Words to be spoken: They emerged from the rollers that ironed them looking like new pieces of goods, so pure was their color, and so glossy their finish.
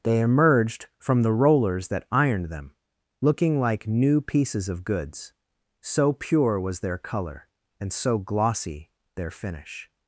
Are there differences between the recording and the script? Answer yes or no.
no